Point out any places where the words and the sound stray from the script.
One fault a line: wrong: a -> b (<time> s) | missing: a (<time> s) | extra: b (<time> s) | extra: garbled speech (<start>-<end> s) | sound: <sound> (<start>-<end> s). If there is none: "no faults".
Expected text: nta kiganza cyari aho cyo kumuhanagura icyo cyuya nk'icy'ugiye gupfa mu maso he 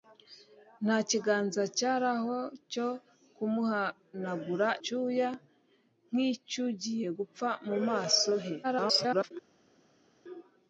missing: icyo (4.7 s)
extra: garbled speech (8.6-9.3 s)